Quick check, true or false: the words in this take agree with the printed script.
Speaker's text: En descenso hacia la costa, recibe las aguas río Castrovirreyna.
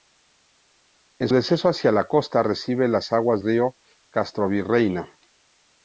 true